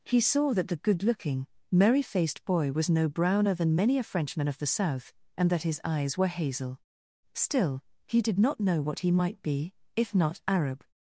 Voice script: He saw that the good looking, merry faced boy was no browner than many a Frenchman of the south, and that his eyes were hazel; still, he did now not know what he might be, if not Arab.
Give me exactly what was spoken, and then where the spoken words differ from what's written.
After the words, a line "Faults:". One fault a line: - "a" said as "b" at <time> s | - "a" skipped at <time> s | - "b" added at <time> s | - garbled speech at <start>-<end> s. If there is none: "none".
He saw that the good looking, merry faced boy was no browner than many a Frenchman of the south, and that his eyes were hazel; still, he did not know what he might be, if not Arab.
Faults:
- "now" skipped at 8.4 s